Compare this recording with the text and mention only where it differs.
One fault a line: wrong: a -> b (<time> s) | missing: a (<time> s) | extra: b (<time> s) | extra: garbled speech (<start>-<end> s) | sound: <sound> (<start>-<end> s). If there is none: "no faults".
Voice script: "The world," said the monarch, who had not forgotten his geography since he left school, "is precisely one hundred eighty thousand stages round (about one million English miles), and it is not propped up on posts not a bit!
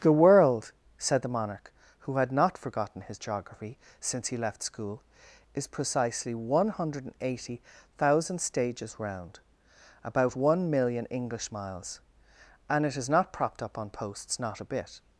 no faults